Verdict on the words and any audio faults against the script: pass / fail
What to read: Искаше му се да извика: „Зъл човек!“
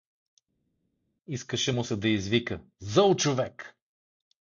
pass